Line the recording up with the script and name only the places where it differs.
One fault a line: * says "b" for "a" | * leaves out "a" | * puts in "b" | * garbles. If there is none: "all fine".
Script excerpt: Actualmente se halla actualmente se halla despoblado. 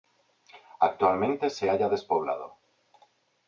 * leaves out "actualmente se halla"